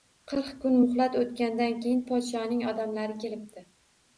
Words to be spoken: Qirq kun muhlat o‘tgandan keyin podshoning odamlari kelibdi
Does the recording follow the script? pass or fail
pass